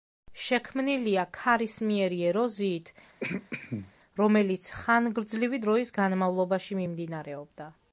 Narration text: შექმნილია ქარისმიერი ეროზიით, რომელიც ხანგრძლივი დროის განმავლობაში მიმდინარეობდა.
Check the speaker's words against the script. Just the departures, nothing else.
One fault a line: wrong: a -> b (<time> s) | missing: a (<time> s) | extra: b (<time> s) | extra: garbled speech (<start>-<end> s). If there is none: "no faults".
no faults